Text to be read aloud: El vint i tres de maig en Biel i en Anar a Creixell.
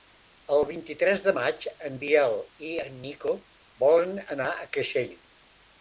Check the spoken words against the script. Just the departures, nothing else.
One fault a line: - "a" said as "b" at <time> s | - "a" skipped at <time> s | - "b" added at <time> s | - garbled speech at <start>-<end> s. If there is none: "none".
- "Nico volen" added at 3.1 s